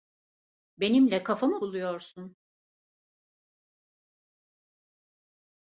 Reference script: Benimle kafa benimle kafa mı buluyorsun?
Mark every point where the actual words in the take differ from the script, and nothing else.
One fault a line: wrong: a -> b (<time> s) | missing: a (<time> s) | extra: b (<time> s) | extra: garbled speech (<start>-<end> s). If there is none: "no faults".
missing: benimle kafa (1.5 s)